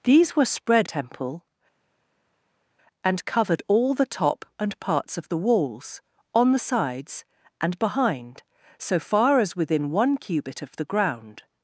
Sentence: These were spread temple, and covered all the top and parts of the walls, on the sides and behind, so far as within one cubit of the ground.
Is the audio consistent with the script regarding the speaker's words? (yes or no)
yes